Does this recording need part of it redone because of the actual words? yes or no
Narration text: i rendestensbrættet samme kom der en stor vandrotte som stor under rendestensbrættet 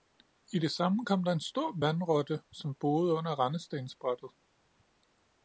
yes